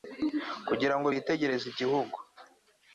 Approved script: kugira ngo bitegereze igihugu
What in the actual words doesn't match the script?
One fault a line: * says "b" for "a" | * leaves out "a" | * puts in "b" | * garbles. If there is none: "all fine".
all fine